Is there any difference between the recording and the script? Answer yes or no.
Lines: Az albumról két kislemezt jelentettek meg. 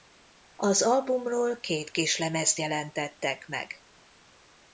no